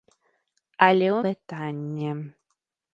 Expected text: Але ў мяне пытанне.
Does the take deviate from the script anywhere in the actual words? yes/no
yes